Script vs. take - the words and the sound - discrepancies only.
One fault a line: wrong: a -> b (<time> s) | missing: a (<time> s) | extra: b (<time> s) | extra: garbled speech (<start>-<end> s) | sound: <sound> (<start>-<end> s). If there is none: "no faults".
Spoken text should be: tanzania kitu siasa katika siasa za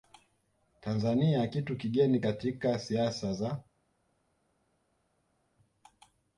wrong: siasa -> kigeni (1.8 s)